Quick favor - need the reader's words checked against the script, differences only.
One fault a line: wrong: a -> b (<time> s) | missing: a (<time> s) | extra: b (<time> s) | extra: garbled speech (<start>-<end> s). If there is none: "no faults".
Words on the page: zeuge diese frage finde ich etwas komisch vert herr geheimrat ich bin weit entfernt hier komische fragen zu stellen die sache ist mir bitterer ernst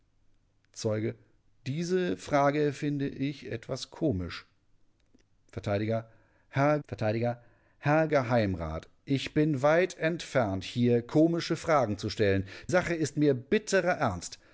extra: vert herr (6.9 s)
missing: die (12.5 s)